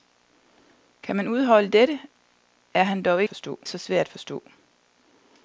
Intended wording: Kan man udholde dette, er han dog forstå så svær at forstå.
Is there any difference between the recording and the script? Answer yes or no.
no